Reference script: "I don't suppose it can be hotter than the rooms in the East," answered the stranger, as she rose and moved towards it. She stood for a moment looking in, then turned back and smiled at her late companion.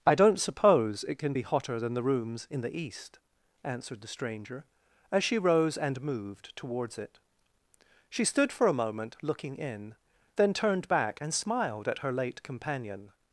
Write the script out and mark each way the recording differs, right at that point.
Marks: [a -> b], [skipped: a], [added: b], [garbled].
"I don't suppose it can be hotter than the rooms in the East," answered the stranger, as she rose and moved towards it. She stood for a moment looking in, then turned back and smiled at her late companion.